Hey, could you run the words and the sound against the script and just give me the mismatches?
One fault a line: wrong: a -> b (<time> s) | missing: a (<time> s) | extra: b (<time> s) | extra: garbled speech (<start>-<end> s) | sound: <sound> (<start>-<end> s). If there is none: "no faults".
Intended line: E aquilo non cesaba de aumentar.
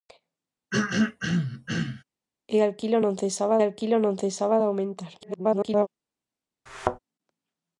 sound: throat clearing (0.7-2.0 s)
extra: aquilo non cesaba (3.6 s)
extra: garbled speech (5.2-5.9 s)
sound: thud (6.7-7.0 s)